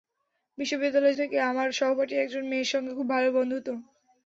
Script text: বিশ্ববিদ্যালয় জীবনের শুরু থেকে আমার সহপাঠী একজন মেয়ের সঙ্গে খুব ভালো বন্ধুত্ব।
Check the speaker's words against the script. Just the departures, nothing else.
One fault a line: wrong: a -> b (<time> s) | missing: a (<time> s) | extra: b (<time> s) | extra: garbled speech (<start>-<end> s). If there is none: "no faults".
missing: জীবনের শুরু (1.2 s)